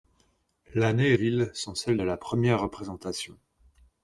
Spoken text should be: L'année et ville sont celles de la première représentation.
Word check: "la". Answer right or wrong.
right